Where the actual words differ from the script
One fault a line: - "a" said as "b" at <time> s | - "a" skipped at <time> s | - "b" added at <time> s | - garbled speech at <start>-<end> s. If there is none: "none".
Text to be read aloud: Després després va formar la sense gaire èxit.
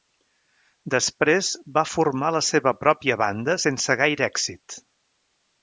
- "després" skipped at 1.5 s
- "seva pròpia banda" added at 2.5 s